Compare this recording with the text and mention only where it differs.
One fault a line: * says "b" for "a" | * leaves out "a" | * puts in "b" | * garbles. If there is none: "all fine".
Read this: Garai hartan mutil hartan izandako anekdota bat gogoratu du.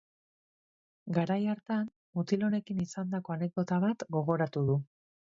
* says "honekin" for "hartan"